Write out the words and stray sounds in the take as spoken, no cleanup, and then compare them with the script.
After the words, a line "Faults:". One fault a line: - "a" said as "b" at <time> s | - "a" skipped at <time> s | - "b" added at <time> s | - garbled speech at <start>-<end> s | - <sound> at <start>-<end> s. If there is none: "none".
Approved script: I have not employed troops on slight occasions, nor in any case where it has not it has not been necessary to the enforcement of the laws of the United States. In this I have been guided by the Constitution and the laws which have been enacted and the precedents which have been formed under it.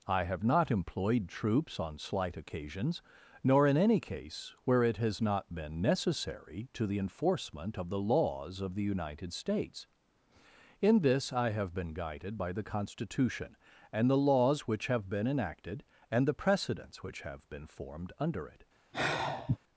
I have not employed troops on slight occasions, nor in any case where it has not been necessary to the enforcement of the laws of the United States. In this I have been guided by the Constitution and the laws which have been enacted and the precedents which have been formed under it.
Faults:
- "it has not" skipped at 5.5 s
- sigh at 18.9-19.6 s